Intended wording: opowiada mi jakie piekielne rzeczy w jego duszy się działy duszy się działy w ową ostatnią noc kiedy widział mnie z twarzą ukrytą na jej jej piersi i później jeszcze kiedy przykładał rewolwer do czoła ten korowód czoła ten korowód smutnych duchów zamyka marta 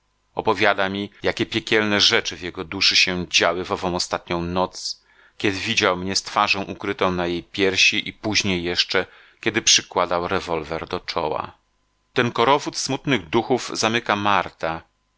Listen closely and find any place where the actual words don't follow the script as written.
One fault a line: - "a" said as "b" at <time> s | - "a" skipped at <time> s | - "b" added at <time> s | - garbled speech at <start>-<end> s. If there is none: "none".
- "duszy się działy" skipped at 3.6 s
- "jej" skipped at 7.4 s
- "czoła ten korowód" skipped at 12.8 s